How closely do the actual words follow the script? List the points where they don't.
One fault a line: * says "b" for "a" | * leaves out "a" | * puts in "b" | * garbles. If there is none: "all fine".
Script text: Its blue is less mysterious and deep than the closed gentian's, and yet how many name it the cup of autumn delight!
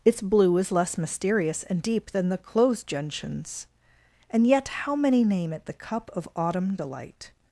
all fine